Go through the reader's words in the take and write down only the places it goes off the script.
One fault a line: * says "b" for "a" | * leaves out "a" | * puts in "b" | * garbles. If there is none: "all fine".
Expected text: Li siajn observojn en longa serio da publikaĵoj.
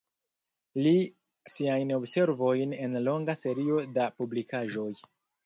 all fine